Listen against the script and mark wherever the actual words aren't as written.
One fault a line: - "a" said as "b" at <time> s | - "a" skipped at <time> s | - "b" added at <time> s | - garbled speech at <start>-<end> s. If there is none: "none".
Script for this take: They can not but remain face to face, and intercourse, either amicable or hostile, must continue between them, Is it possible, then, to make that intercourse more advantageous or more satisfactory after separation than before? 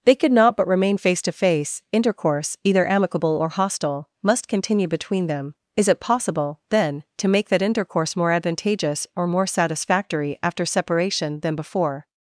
- "can" said as "could" at 0.1 s
- "and" skipped at 1.8 s